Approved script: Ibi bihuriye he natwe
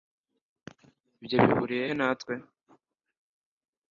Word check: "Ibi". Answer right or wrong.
wrong